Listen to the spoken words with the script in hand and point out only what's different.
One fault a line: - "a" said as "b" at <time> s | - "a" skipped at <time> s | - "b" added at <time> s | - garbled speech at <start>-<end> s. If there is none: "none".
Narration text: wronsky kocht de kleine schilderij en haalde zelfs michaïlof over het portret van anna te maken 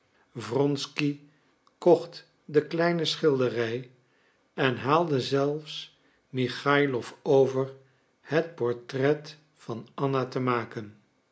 none